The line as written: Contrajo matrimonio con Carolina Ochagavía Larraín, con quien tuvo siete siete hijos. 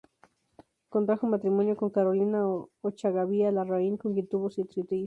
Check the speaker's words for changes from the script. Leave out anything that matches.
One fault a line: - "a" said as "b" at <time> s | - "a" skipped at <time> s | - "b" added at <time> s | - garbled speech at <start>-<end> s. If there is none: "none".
none